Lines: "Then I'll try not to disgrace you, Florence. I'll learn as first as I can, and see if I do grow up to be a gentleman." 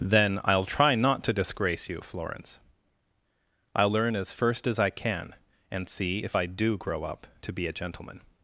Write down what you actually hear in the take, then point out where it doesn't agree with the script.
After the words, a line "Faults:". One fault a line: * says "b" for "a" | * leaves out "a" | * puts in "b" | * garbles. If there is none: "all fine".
"Then I'll try not to disgrace you, Florence. I'll learn as first as I can, and see if I do grow up to be a gentleman."
Faults:
all fine